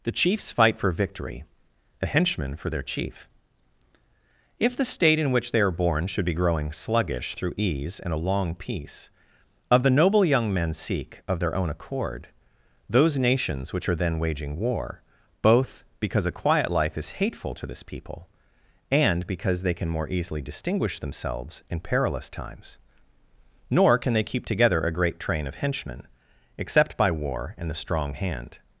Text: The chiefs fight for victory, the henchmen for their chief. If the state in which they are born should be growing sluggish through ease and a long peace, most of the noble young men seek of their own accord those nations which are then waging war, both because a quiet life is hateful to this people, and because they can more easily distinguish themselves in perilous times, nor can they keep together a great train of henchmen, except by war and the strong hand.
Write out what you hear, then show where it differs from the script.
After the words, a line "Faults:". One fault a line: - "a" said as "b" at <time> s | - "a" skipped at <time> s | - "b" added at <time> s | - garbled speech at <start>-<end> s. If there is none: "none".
The chiefs fight for victory, the henchmen for their chief. If the state in which they are born should be growing sluggish through ease and a long peace, of the noble young men seek of their own accord those nations which are then waging war, both because a quiet life is hateful to this people, and because they can more easily distinguish themselves in perilous times, nor can they keep together a great train of henchmen, except by war and the strong hand.
Faults:
- "most" skipped at 9.1 s